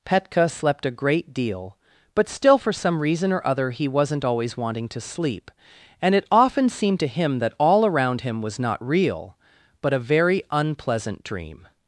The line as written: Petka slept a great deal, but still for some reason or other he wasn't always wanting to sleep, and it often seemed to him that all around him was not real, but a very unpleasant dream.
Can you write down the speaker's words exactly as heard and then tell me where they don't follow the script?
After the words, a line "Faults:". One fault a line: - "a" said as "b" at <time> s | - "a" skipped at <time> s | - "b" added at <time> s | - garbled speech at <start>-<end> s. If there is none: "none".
Petka slept a great deal, but still for some reason or other he wasn't always wanting to sleep, and it often seemed to him that all around him was not real, but a very unpleasant dream.
Faults:
none